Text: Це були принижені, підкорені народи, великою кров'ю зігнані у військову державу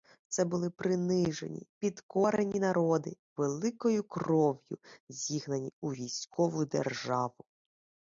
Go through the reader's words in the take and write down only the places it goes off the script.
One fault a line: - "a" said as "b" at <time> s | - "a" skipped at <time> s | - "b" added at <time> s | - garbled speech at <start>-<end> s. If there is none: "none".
none